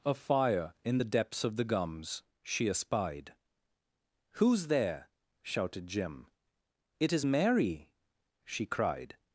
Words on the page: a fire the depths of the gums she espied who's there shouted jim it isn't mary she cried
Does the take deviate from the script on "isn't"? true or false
true